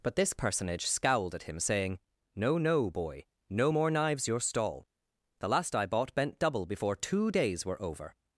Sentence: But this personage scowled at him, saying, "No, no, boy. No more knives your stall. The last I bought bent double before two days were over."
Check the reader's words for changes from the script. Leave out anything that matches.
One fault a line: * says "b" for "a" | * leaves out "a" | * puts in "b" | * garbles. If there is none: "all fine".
all fine